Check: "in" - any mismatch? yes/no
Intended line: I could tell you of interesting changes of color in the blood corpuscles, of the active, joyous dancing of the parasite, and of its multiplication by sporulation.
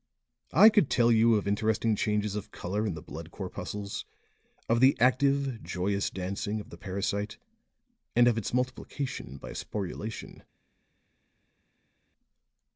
no